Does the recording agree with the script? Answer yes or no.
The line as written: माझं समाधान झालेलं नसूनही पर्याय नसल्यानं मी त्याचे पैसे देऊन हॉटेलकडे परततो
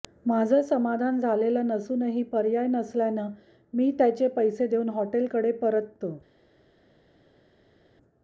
yes